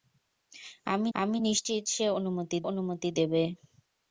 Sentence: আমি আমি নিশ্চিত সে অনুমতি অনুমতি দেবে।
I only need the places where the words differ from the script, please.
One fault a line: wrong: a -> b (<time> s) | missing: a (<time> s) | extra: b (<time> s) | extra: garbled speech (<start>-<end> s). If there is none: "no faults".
no faults